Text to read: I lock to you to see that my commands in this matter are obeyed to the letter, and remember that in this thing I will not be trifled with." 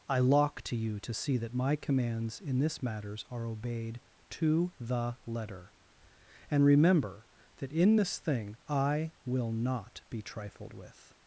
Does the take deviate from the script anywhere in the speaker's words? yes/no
yes